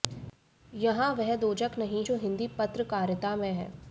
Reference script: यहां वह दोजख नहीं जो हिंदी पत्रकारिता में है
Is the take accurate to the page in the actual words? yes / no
yes